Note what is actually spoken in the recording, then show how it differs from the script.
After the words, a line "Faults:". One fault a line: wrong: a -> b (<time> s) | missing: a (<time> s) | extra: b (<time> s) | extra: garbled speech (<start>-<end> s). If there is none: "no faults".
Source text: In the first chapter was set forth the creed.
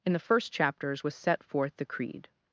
In the first chapters was set forth the creed.
Faults:
wrong: chapter -> chapters (0.5 s)